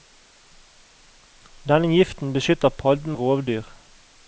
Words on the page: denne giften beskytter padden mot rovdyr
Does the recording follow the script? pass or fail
fail